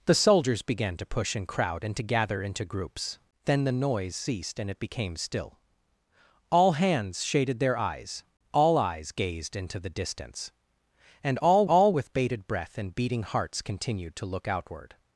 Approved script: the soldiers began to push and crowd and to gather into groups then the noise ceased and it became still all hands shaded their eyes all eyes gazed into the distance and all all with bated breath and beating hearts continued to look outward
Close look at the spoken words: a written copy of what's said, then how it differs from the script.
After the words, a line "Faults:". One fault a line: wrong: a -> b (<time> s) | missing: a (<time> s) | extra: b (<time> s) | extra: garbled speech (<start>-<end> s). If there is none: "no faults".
the soldiers began to push and crowd and to gather into groups then the noise ceased and it became still all hands shaded their eyes all eyes gazed into the distance and all all with bated breath and beating hearts continued to look outward
Faults:
no faults